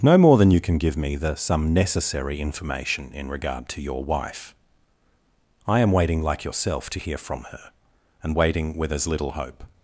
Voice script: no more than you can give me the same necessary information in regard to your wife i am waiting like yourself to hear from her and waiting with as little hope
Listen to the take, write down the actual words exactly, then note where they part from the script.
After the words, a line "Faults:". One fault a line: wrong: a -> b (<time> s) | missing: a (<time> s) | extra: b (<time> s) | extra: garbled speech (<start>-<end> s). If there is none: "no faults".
no more than you can give me the some necessary information in regard to your wife i am waiting like yourself to hear from her and waiting with as little hope
Faults:
wrong: same -> some (1.3 s)